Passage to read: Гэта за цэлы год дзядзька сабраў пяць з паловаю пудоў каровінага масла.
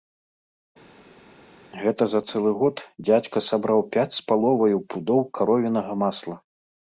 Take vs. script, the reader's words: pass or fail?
pass